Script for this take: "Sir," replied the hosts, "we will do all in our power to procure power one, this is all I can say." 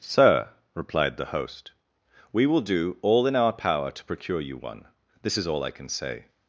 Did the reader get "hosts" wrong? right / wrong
wrong